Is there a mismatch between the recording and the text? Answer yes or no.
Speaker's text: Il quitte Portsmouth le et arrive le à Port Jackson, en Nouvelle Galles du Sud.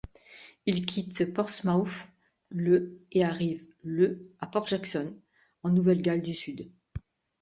no